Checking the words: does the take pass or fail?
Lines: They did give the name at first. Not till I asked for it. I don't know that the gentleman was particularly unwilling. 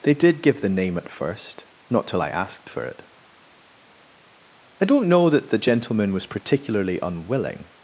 pass